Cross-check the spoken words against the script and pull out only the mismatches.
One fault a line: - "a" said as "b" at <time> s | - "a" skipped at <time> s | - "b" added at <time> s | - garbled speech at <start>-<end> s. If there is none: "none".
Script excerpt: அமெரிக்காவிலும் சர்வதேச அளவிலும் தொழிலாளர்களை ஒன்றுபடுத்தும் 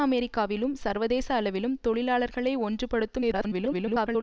- garbled speech at 3.2-4.2 s